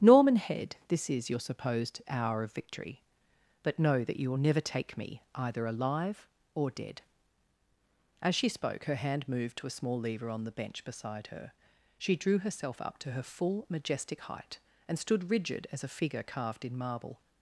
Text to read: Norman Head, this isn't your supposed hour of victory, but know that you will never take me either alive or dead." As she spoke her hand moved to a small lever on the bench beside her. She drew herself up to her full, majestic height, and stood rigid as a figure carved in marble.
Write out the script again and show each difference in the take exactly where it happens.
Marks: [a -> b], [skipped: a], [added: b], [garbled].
Norman Head, this [isn't -> is] your supposed hour of victory, but know that you will never take me either alive or dead." As she spoke her hand moved to a small lever on the bench beside her. She drew herself up to her full, majestic height, and stood rigid as a figure carved in marble.